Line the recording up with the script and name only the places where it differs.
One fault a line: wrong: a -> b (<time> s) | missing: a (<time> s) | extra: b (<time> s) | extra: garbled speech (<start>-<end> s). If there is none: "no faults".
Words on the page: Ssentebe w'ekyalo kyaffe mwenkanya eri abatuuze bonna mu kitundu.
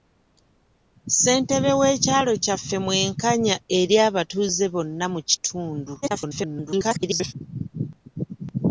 extra: garbled speech (6.0-7.3 s)